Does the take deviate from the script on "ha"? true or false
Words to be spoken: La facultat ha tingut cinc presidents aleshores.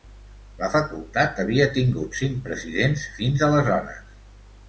true